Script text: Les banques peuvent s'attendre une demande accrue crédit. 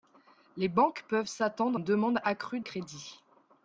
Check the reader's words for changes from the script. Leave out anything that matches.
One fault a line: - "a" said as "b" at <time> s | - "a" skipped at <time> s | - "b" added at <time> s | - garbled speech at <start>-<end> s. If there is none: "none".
none